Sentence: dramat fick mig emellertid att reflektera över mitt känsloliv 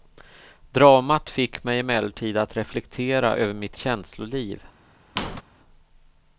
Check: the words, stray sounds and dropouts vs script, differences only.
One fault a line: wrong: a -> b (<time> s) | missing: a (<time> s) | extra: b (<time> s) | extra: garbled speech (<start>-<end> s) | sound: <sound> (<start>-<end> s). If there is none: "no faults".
sound: squeak (5.2-5.4 s)